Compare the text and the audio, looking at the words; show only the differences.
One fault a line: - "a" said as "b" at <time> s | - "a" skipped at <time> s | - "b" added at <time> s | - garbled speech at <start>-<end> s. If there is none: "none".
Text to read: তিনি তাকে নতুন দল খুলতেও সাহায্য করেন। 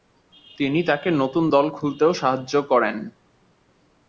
none